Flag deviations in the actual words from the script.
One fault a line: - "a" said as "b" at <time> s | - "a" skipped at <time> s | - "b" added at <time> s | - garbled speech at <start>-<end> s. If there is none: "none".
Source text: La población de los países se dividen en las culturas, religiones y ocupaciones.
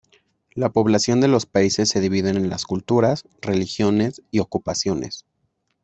none